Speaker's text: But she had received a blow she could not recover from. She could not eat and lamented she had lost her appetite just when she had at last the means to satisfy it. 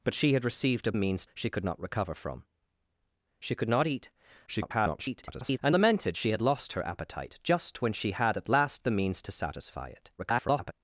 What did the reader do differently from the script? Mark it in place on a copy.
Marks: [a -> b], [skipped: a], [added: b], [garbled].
But she had received a [blow -> means] she could not recover from. She could not eat [garbled] and lamented she had lost her appetite just when she had at last the means to satisfy it. [garbled]